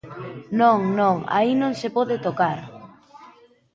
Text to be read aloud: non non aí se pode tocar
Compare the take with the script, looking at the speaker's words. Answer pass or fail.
fail